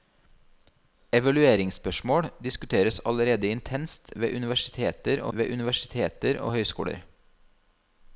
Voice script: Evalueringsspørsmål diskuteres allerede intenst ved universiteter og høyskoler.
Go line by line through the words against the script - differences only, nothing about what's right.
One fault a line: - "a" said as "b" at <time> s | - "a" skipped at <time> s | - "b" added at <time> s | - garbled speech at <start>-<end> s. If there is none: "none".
- "ved universiteter og" added at 5.3 s